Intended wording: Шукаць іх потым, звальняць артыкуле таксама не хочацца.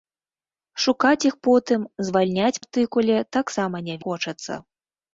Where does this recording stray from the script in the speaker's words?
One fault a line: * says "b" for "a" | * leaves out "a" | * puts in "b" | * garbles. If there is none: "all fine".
all fine